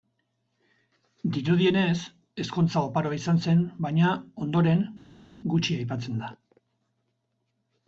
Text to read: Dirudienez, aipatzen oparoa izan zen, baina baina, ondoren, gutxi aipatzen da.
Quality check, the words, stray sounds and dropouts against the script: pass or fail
fail